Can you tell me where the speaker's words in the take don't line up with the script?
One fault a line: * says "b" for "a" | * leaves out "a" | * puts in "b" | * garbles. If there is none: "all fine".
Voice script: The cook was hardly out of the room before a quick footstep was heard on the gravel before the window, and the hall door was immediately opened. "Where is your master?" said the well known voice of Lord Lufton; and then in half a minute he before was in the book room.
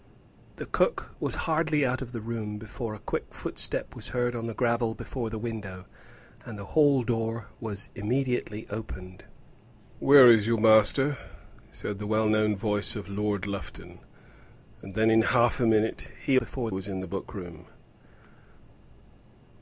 all fine